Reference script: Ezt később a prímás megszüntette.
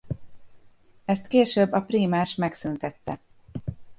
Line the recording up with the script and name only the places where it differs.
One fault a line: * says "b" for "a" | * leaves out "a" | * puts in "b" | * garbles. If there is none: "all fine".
all fine